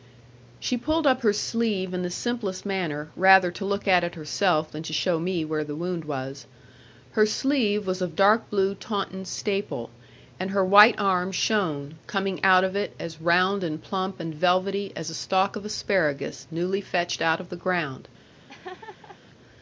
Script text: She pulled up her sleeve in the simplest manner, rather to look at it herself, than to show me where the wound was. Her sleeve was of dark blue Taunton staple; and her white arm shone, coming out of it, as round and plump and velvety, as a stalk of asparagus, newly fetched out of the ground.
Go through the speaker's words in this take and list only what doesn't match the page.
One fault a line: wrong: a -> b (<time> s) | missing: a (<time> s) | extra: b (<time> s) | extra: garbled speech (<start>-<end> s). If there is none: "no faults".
no faults